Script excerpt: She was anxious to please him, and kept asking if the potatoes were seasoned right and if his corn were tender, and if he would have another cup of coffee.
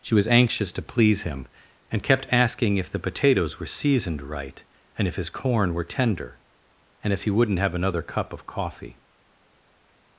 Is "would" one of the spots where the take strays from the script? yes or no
yes